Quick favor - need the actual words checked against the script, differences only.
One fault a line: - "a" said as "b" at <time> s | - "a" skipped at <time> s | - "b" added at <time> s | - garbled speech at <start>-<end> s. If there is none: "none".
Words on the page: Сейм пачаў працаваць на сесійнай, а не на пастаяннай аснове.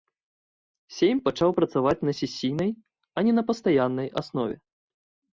none